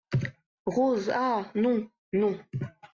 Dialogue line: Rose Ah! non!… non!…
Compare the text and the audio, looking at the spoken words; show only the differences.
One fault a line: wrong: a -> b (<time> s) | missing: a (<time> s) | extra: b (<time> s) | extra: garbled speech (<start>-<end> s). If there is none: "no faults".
no faults